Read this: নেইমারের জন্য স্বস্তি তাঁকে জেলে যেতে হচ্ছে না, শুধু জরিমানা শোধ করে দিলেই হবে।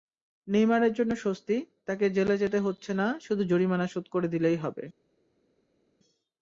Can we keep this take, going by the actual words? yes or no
yes